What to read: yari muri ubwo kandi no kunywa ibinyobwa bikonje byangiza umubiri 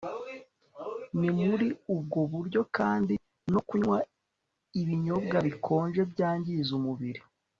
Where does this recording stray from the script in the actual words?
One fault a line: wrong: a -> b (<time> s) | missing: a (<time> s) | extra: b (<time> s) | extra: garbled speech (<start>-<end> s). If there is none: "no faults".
wrong: yari -> ni (1.2 s)
extra: buryo (2.3 s)